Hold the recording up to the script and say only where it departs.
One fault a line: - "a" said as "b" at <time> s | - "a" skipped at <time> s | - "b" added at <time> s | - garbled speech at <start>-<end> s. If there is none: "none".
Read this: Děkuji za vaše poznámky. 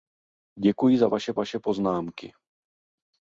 - "vaše" added at 1.3 s